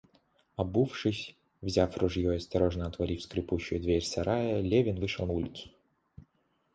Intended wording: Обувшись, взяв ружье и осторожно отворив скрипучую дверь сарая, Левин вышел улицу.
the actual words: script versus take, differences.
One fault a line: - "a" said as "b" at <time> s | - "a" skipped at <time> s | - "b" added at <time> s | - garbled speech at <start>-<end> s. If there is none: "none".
none